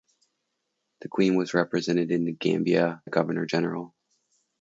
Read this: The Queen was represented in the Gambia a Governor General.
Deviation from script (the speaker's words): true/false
false